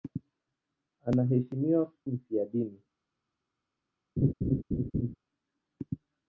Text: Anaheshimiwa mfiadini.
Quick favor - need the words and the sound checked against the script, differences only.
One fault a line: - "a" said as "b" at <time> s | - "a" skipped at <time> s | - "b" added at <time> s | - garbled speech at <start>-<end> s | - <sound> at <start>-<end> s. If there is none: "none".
- laugh at 4.2-5.2 s